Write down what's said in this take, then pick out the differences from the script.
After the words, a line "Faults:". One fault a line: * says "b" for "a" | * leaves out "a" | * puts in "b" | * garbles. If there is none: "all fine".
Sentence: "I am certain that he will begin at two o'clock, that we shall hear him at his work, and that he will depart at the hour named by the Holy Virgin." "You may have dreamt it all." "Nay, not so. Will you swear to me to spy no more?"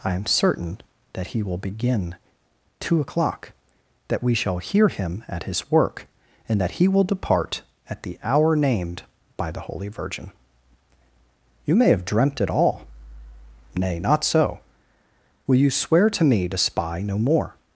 "I am certain that he will begin two o'clock, that we shall hear him at his work, and that he will depart at the hour named by the Holy Virgin." "You may have dreamt it all." "Nay, not so. Will you swear to me to spy no more?"
Faults:
* leaves out "at"